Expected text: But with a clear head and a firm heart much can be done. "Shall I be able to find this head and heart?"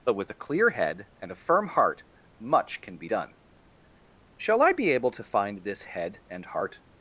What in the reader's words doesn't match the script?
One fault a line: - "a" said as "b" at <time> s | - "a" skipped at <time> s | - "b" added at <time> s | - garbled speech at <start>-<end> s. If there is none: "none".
none